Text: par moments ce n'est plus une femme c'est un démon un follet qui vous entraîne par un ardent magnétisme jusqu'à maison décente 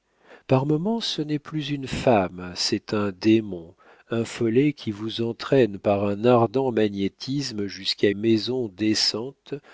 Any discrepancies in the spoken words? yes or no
no